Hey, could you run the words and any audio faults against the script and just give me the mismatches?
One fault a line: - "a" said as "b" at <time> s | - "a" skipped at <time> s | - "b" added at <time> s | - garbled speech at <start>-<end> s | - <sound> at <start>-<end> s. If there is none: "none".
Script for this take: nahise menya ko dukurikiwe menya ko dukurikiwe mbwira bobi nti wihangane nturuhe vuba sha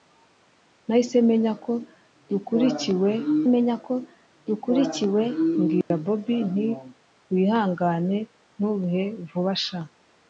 - dropout at 5.8-5.9 s